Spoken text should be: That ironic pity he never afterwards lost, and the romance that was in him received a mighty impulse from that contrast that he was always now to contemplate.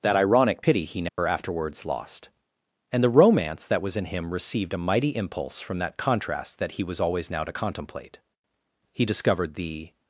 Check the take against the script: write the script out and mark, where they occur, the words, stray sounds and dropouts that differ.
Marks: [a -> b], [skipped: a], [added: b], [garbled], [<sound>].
That ironic pity he never [dropout] afterwards lost, and the romance that was in him received a mighty impulse from that contrast that he was always now to contemplate. [added: He discovered the]